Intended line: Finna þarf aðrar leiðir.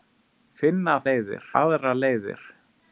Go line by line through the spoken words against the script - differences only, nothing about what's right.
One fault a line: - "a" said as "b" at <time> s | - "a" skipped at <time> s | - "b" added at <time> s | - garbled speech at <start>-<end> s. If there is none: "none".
- "þarf" said as "leiðir" at 1.0 s